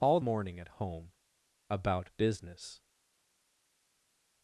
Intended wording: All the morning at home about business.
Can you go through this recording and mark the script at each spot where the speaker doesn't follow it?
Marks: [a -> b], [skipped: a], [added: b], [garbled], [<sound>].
All [skipped: the] morning at home about business.